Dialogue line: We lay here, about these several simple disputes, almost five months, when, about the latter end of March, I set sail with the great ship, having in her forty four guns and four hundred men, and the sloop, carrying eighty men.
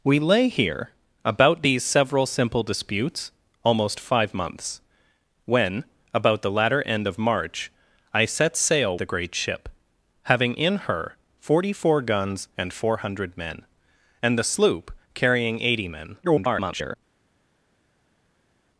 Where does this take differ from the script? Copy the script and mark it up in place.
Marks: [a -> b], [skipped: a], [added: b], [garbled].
We lay here, about these several simple disputes, almost five months, when, about the latter end of March, I set sail [skipped: with] the great ship, having in her forty four guns and four hundred men, and the sloop, carrying eighty men. [garbled]